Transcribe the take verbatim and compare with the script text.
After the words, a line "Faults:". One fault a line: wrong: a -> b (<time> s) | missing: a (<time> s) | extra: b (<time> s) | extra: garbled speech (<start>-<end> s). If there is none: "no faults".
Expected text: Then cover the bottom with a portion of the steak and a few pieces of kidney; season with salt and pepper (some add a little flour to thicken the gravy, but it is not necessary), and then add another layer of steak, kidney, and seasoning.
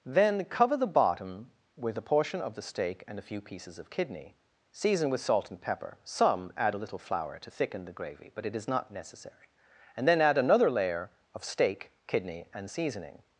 Then cover the bottom with a portion of the steak and a few pieces of kidney; season with salt and pepper (some add a little flour to thicken the gravy, but it is not necessary), and then add another layer of steak, kidney, and seasoning.
Faults:
no faults